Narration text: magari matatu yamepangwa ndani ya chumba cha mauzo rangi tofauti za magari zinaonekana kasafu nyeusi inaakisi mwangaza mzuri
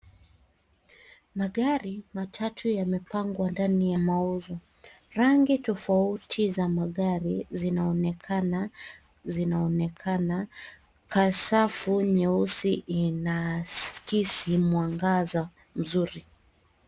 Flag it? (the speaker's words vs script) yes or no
yes